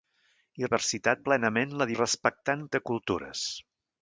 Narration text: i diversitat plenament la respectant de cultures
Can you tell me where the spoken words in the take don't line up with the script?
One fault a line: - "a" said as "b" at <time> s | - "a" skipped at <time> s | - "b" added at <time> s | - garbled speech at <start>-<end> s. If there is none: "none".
none